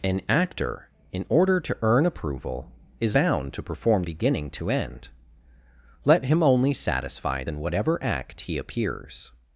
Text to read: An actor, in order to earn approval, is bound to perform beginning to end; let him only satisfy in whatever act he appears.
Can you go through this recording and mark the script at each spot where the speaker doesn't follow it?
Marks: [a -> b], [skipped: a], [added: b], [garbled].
An actor, in order to earn approval, is bound to perform beginning to end; let him only satisfy in whatever act he appears.